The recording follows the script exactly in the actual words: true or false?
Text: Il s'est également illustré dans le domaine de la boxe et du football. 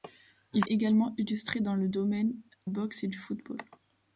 false